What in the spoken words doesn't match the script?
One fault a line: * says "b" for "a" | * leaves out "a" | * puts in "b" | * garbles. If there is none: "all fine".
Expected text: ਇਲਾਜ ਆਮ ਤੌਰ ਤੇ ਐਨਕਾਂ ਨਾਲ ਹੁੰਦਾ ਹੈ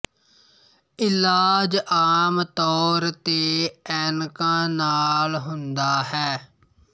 all fine